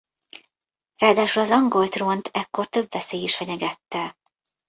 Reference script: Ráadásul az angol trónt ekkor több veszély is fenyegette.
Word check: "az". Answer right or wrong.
right